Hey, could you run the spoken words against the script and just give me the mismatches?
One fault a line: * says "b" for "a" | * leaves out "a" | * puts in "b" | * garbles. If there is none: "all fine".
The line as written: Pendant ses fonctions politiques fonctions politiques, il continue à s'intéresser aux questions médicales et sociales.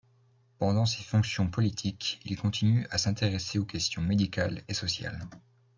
* leaves out "fonctions politiques"